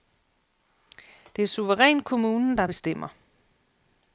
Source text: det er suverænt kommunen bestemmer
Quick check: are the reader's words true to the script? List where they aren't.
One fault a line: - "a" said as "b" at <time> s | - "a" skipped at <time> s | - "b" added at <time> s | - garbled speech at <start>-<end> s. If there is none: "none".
- "der" added at 2.6 s